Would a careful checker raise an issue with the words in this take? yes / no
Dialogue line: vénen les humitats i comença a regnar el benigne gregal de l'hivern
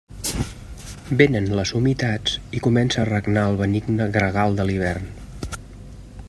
no